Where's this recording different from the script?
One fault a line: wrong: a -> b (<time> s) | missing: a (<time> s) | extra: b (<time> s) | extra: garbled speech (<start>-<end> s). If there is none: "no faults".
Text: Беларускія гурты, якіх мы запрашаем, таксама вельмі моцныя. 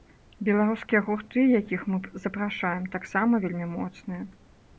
no faults